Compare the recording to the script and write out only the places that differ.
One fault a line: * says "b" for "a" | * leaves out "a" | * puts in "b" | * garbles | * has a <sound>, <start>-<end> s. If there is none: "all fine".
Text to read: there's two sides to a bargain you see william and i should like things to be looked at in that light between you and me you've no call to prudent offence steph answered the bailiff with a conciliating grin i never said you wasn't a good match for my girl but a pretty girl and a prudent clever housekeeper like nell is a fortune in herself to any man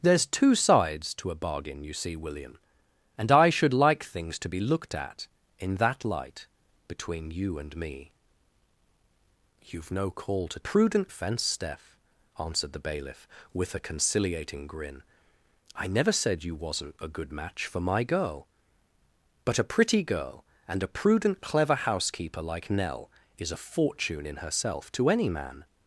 all fine